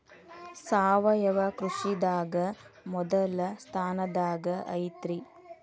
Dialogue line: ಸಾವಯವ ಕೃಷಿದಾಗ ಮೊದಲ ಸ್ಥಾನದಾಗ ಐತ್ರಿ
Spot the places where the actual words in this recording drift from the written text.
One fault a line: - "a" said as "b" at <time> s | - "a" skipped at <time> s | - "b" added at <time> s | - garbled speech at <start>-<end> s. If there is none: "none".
none